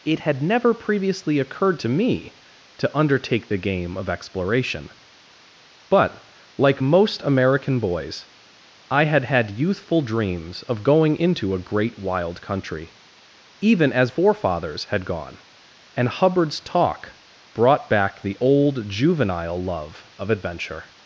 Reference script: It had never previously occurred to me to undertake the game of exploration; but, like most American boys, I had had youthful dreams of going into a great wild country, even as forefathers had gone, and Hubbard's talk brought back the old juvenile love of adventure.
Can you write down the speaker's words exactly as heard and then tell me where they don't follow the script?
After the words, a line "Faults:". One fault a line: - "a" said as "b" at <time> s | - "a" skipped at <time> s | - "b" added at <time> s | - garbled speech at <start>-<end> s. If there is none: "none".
It had never previously occurred to me to undertake the game of exploration; but, like most American boys, I had had youthful dreams of going into a great wild country, even as forefathers had gone, and Hubbard's talk brought back the old juvenile love of adventure.
Faults:
none